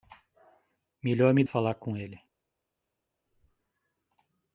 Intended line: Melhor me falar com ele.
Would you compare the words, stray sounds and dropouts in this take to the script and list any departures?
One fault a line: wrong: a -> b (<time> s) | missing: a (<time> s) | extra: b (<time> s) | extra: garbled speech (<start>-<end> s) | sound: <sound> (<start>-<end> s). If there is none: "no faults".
no faults